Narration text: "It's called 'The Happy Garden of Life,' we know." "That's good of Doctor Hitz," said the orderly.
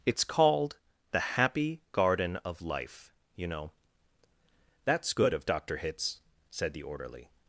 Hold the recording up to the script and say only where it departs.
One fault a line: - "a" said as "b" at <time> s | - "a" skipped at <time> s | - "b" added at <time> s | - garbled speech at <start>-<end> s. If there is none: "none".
- "we" said as "you" at 3.3 s